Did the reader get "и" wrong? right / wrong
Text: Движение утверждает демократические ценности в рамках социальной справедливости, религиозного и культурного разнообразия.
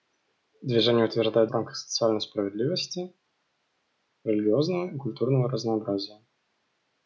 right